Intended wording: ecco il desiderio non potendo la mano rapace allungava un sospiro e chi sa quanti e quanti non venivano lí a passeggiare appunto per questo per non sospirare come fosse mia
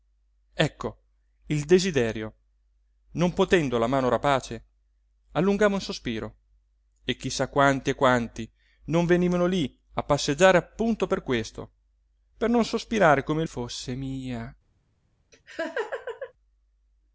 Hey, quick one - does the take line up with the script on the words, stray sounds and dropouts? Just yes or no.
no